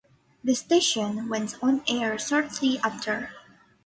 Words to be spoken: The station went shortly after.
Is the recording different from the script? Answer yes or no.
yes